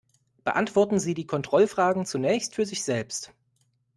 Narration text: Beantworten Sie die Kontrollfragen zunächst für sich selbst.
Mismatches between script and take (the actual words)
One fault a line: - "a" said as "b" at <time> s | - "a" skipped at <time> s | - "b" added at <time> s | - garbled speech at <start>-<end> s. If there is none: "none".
none